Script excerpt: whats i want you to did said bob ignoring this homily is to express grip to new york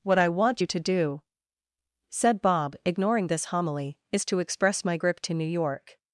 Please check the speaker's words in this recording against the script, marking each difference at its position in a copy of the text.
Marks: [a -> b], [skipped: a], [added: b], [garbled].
[whats -> what] i want you to [did -> do] said bob ignoring this homily is to express [added: my] grip to new york